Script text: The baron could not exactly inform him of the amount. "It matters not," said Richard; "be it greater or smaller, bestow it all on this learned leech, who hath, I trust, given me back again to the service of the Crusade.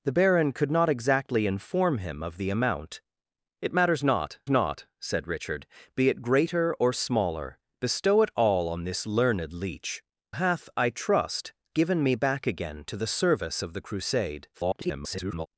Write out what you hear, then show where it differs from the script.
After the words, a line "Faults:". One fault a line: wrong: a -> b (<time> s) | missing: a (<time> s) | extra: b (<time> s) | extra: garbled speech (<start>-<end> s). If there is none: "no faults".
The baron could not exactly inform him of the amount. "It matters not not," said Richard; "be it greater or smaller, bestow it all on this learned leech, hath, I trust, given me back again to the service of the Crusade. [garbled]
Faults:
extra: not (4.5 s)
missing: who (10.0 s)
extra: garbled speech (14.5-15.5 s)